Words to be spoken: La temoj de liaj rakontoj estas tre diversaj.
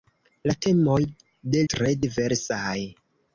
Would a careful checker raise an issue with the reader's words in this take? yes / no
yes